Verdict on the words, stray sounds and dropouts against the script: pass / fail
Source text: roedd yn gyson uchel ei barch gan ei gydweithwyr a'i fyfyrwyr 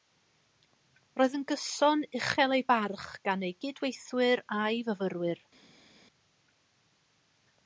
pass